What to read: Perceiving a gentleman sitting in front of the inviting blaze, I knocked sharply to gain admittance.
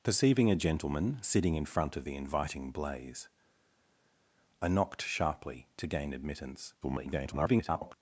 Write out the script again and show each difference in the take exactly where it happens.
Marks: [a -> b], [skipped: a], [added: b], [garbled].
Perceiving a gentleman sitting in front of the inviting blaze, I knocked sharply to gain admittance. [garbled]